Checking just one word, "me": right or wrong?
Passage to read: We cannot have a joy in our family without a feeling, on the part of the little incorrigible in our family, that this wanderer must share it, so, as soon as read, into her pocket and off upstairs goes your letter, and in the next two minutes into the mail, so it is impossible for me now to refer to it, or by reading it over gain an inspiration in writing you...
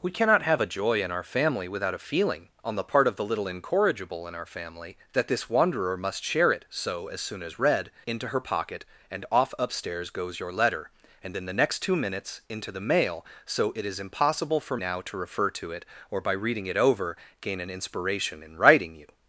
wrong